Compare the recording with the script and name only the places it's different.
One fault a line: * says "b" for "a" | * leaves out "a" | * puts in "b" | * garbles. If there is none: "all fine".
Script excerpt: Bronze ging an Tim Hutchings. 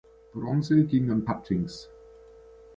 * leaves out "Tim"